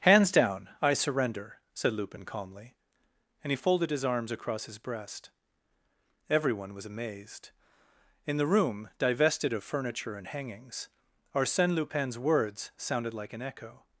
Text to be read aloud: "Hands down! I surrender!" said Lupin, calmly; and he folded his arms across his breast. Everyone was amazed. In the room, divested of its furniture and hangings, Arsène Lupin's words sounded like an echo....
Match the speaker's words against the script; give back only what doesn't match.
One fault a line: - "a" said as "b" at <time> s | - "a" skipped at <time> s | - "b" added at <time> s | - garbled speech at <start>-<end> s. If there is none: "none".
- "its" skipped at 9.6 s